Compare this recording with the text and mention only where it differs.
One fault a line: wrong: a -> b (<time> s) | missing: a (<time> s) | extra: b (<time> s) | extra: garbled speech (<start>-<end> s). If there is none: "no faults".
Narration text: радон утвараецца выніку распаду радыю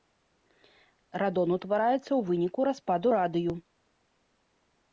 extra: ў (2.0 s)